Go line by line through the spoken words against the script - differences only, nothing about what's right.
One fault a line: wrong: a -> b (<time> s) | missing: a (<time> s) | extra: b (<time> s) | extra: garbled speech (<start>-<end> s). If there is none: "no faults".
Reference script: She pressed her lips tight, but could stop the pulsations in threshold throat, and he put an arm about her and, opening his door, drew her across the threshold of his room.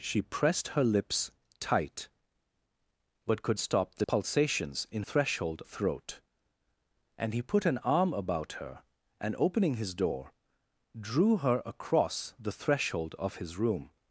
no faults